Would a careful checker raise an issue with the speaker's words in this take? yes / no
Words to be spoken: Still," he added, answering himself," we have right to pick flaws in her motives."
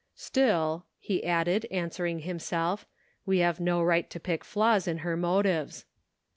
yes